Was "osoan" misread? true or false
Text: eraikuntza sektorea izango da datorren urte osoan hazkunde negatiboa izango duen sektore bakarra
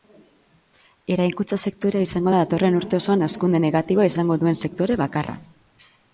false